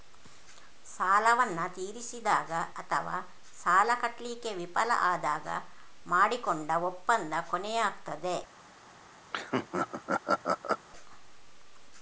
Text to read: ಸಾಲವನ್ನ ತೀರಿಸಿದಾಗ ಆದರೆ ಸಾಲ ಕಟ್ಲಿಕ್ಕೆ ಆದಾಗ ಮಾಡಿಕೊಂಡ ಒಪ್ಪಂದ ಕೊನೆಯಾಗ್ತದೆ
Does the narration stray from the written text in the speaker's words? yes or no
yes